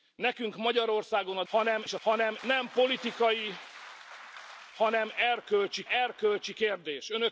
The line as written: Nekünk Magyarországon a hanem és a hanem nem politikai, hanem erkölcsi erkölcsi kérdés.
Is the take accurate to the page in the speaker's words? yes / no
yes